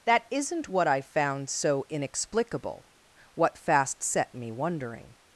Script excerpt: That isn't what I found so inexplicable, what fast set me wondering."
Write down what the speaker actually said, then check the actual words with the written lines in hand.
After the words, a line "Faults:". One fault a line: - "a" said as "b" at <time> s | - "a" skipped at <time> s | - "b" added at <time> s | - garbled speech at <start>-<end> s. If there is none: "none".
That isn't what I found so inexplicable, what fast set me wondering."
Faults:
none